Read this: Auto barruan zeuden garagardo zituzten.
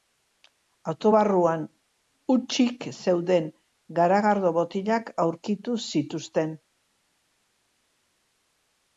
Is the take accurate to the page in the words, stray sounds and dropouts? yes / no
no